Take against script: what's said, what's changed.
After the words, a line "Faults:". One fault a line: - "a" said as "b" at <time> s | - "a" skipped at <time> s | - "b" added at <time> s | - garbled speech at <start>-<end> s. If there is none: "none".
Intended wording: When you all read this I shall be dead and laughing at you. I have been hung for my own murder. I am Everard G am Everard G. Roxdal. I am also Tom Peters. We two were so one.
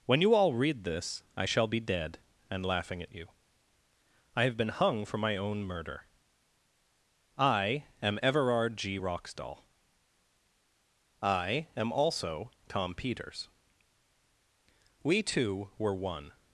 When you all read this I shall be dead and laughing at you. I have been hung for my own murder. I am Everard G. Roxdal. I am also Tom Peters. We two were one.
Faults:
- "am Everard G" skipped at 9.0 s
- "so" skipped at 15.9 s